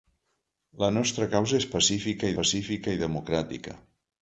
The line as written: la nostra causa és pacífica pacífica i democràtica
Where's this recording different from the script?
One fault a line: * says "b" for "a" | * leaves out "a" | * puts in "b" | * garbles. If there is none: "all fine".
all fine